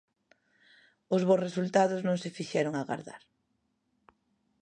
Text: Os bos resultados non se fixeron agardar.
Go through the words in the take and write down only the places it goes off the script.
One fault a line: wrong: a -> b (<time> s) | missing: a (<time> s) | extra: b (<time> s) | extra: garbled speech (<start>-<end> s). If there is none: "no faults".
no faults